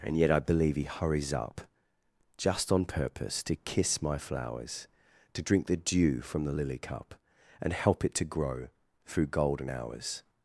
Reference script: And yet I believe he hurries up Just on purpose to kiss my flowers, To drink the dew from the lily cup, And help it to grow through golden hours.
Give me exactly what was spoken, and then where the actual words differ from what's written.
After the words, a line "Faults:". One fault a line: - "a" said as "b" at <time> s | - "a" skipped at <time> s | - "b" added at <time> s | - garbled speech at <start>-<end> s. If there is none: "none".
And yet I believe he hurries up Just on purpose to kiss my flowers, To drink the dew from the lily cup, And help it to grow through golden hours.
Faults:
none